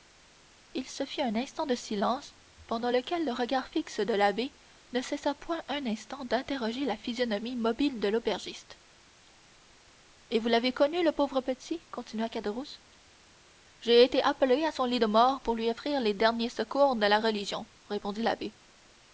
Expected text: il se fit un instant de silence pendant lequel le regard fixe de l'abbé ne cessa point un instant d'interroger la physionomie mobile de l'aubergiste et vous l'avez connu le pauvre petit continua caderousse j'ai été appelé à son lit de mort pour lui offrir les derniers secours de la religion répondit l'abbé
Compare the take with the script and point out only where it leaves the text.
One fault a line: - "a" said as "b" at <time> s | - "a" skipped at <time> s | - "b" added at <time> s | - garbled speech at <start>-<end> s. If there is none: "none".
none